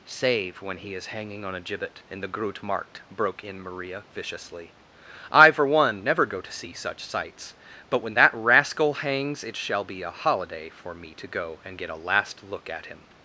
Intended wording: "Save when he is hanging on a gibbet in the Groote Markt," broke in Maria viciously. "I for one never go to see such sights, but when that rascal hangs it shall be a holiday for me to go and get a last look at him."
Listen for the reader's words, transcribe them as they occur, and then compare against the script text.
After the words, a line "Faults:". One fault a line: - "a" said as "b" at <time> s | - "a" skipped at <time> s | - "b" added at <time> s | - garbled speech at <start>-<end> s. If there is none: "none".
"Save when he is hanging on a gibbet in the Groote Markt," broke in Maria viciously. "I for one never go to see such sights, but when that rascal hangs it shall be a holiday for me to go and get a last look at him."
Faults:
none